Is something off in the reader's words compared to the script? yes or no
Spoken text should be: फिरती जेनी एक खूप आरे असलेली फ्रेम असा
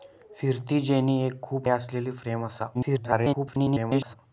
yes